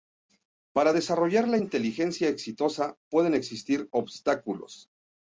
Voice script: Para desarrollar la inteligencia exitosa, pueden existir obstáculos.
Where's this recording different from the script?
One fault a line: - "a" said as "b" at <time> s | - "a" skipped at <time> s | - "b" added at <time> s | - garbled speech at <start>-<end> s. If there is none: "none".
none